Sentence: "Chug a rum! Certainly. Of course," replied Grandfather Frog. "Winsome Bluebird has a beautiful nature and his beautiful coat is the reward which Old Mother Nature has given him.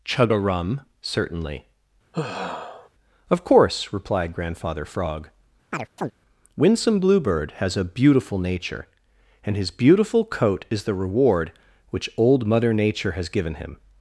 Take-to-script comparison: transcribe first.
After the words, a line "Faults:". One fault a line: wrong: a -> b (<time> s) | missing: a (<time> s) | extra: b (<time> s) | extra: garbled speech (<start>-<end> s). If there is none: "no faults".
"Chug a rum! Certainly. Of course," replied Grandfather Frog. "Winsome Bluebird has a beautiful nature and his beautiful coat is the reward which Old Mother Nature has given him.
Faults:
no faults